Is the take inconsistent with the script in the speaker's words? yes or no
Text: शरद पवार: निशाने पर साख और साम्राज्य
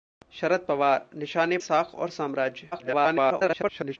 yes